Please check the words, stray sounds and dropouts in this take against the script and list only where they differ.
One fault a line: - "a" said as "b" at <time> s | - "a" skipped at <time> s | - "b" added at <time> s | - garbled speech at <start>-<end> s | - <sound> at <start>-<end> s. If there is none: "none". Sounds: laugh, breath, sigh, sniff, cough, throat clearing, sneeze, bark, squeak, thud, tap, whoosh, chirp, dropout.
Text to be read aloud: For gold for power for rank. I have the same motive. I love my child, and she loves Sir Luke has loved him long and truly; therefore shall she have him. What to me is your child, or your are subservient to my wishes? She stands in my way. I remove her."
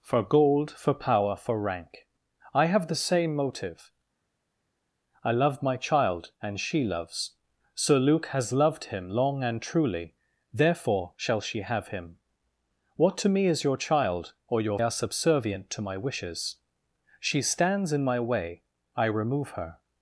none